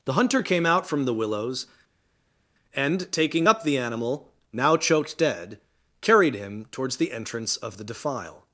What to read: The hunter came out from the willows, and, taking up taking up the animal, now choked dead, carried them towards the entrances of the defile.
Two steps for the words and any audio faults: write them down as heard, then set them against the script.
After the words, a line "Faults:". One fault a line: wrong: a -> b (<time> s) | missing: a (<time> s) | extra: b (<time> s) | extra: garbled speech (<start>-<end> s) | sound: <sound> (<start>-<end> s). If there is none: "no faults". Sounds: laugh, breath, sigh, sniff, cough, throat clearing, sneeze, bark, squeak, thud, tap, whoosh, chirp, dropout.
The hunter came out from the willows, and, taking up the animal, now choked dead, carried him towards the entrance of the defile.
Faults:
missing: taking up (3.6 s)
wrong: them -> him (6.3 s)
wrong: entrances -> entrance (7.1 s)